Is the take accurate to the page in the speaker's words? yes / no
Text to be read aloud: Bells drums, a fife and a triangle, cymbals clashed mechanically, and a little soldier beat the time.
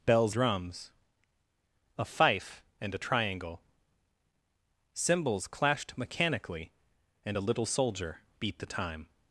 yes